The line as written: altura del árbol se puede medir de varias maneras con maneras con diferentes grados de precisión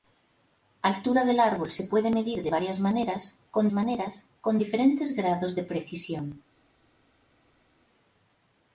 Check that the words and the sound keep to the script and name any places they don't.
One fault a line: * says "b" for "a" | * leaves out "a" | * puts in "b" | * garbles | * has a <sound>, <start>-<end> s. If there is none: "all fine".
all fine